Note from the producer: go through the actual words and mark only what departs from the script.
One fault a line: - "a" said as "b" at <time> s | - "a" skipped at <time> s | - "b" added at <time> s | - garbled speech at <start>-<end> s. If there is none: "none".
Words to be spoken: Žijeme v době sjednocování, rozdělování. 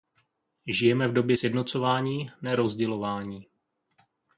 - "ne" added at 2.4 s